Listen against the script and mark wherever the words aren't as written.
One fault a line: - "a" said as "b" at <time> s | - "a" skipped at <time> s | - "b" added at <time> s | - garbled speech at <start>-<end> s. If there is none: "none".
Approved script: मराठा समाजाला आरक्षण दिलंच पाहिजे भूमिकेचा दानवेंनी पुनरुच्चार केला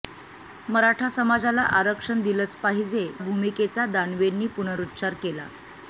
none